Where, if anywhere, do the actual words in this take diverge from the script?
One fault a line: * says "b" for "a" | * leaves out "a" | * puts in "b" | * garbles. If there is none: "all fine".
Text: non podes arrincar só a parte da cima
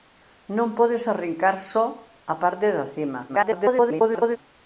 * garbles